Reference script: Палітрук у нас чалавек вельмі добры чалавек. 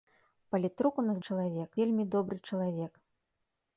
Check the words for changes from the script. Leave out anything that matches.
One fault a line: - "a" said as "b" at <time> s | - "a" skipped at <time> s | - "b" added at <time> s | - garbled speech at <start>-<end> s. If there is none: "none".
none